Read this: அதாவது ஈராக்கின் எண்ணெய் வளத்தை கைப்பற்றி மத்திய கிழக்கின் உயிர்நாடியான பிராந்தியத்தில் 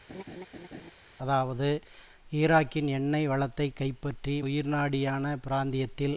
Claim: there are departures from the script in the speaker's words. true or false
true